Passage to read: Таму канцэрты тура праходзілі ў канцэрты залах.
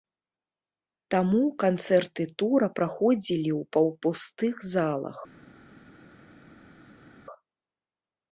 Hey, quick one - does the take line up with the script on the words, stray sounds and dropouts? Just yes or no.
no